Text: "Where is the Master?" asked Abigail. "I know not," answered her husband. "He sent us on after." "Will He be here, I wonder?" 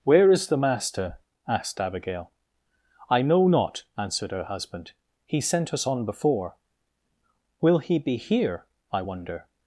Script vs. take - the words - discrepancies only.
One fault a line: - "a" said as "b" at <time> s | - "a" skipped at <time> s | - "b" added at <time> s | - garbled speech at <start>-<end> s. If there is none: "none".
- "after" said as "before" at 6.1 s